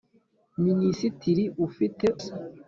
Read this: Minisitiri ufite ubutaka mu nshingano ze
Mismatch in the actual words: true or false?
true